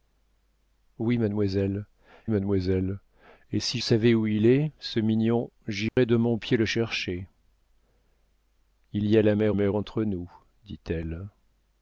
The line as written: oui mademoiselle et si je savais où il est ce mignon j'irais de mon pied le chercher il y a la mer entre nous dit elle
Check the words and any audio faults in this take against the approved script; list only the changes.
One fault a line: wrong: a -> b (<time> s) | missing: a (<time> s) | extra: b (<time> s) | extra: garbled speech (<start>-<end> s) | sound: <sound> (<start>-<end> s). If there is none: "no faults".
extra: mademoiselle (2.3 s)
missing: je (3.8 s)
sound: dropout (5.9-6.0 s)
extra: mer (9.5 s)